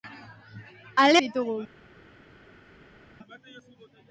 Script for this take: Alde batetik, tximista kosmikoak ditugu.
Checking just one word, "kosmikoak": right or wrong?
wrong